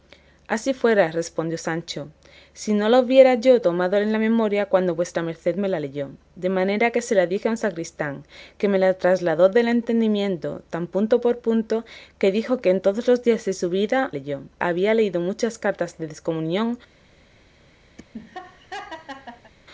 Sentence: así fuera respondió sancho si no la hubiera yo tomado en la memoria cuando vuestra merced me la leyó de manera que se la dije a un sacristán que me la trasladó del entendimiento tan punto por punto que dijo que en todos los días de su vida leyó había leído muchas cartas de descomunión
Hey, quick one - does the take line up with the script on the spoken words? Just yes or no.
yes